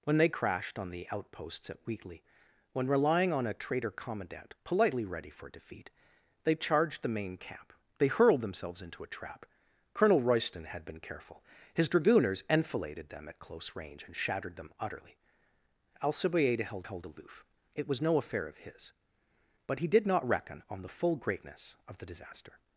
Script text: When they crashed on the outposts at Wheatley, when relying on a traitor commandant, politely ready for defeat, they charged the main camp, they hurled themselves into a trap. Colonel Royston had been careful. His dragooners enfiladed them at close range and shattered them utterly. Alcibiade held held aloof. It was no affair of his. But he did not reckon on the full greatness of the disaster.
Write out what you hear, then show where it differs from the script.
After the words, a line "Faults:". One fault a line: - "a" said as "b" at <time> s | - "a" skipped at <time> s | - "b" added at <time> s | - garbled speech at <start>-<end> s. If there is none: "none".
When they crashed on the outposts at Wheatley, when relying on a traitor commandant, politely ready for defeat, they charged the main camp, they hurled themselves into a trap. Colonel Royston had been careful. His dragooners enfiladed them at close range and shattered them utterly. Alcibiade held held aloof. It was no affair of his. But he did not reckon on the full greatness of the disaster.
Faults:
none